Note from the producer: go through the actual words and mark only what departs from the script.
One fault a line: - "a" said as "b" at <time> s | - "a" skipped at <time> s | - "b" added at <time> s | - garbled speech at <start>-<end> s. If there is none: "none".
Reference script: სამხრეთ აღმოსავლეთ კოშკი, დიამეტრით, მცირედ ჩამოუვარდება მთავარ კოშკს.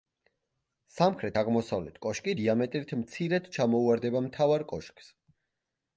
none